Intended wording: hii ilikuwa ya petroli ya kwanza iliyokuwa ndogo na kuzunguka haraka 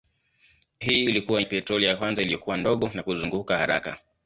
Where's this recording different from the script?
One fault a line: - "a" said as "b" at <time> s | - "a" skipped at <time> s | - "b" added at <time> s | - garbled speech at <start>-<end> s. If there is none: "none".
none